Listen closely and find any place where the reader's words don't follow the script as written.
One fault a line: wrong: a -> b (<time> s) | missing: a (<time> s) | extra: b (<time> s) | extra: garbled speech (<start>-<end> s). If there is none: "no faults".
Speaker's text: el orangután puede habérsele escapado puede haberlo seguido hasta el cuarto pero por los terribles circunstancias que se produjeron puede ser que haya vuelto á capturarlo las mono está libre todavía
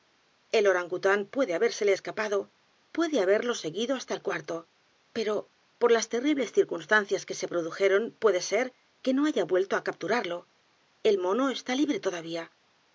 wrong: los -> las (5.9 s)
extra: no (9.1 s)
wrong: las -> el (11.0 s)